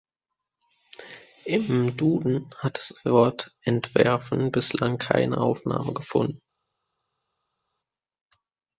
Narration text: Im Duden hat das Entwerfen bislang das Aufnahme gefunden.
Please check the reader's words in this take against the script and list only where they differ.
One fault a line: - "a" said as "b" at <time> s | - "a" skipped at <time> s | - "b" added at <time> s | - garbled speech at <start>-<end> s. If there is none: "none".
- "Wort" added at 3.0 s
- "das" said as "keine" at 5.0 s